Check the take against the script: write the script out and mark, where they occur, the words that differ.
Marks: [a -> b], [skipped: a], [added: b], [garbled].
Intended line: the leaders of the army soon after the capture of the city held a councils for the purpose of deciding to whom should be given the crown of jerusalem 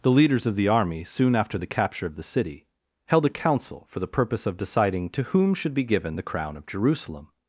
the leaders of the army soon after the capture of the city held a [councils -> council] for the purpose of deciding to whom should be given the crown of jerusalem